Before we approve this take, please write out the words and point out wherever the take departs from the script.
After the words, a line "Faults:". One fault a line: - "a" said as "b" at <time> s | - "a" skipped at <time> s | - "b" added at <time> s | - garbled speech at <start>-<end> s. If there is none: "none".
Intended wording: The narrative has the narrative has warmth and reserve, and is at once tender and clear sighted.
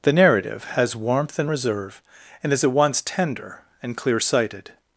The narrative has warmth and reserve, and is at once tender and clear sighted.
Faults:
- "the narrative has" skipped at 0.9 s